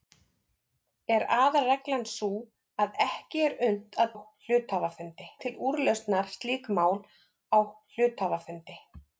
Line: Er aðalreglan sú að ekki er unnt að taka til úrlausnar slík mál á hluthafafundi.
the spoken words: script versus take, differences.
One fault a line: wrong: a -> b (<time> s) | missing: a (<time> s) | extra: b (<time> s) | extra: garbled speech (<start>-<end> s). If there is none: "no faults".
wrong: taka -> hluthafafundi (4.1 s)